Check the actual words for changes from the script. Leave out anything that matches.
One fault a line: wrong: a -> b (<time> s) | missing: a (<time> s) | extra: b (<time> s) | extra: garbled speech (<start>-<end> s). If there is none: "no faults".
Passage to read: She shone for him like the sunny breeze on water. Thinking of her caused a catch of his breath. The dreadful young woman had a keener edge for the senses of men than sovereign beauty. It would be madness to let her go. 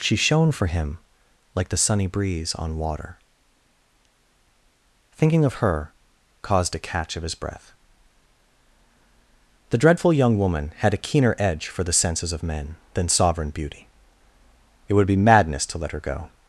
no faults